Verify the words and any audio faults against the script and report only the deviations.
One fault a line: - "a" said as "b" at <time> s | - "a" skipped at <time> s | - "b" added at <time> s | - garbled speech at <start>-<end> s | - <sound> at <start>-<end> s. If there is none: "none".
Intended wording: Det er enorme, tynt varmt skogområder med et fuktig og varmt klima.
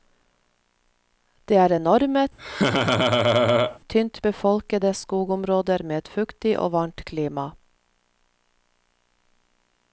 - laugh at 2.4-3.8 s
- "varmt" said as "befolkede" at 4.2 s